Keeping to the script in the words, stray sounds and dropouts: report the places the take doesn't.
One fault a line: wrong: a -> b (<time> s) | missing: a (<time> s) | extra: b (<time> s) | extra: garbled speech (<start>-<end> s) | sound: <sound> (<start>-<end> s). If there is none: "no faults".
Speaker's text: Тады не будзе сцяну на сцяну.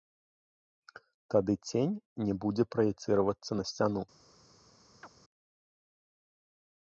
extra: цень (1.7 s)
wrong: сцяну -> праецыравацца (2.8 s)
sound: chirp (5.0-5.1 s)